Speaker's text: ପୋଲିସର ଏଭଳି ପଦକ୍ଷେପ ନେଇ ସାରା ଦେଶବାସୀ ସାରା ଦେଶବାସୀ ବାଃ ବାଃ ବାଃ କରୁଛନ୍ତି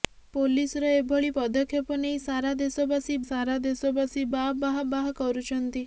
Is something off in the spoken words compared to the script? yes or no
no